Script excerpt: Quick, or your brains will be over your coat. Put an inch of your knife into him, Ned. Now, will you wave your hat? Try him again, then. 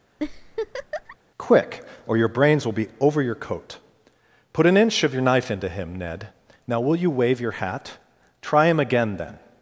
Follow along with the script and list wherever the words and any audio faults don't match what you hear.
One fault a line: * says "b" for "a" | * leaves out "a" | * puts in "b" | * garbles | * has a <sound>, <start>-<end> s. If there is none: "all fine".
* has a laugh, 0.2-1.2 s